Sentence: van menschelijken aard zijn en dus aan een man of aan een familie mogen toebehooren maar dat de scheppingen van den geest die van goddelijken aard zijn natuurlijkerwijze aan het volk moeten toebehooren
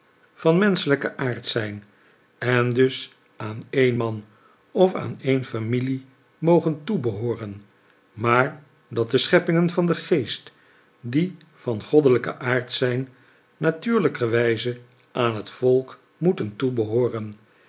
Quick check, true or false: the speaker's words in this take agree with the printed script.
true